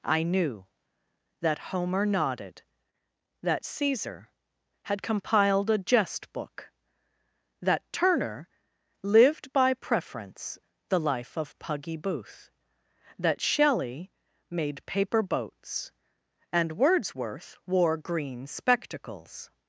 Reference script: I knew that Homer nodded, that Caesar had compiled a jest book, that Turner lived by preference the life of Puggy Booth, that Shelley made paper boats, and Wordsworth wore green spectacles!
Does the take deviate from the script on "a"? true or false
false